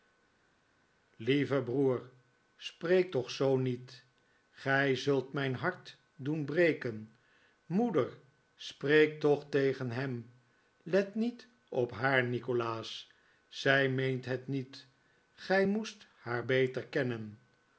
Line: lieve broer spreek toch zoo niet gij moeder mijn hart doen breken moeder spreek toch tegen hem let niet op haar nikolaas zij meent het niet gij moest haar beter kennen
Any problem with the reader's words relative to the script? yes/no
yes